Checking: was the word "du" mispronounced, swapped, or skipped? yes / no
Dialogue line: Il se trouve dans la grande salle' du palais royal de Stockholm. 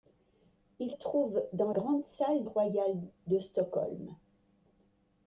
yes